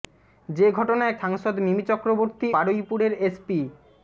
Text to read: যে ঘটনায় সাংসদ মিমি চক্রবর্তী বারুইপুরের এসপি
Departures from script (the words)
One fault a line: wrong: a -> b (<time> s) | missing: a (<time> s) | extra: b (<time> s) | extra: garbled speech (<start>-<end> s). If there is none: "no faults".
no faults